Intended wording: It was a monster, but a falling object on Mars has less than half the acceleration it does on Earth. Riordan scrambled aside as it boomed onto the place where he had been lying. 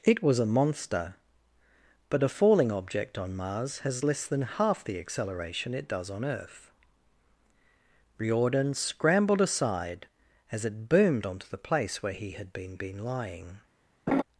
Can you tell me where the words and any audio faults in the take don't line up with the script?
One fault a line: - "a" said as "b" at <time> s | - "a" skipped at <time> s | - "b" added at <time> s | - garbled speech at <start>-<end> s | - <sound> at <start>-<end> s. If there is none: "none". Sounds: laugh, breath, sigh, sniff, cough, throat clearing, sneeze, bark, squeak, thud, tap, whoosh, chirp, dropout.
- "been" added at 12.8 s
- laugh at 14.1-14.2 s